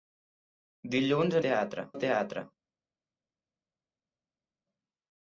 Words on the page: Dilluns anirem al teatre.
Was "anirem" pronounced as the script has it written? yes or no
no